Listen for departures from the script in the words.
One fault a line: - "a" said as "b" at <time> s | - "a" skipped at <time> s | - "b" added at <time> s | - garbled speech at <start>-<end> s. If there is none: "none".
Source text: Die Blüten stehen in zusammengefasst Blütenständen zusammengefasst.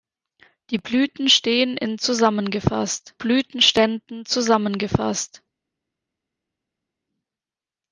none